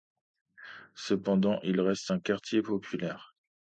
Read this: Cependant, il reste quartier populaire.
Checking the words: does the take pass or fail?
fail